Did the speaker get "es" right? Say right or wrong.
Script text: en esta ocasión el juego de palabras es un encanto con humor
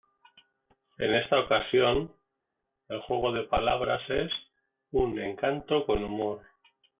right